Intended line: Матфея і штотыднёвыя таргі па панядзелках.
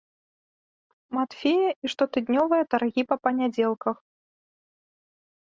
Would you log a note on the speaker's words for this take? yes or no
no